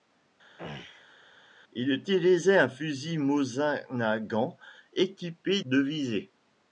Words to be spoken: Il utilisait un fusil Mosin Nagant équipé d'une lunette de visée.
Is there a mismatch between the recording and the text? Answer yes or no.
yes